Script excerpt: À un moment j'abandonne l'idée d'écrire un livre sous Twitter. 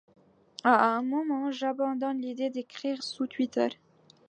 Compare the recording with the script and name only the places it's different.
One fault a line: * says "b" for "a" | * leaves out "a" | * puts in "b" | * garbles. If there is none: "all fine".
* leaves out "un livre"